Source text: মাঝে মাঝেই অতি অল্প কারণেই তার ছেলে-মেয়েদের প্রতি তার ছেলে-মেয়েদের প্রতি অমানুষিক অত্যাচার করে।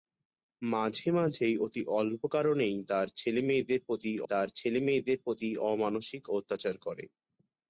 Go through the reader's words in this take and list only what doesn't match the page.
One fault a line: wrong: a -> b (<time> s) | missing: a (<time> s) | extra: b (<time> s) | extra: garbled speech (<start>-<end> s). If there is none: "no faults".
no faults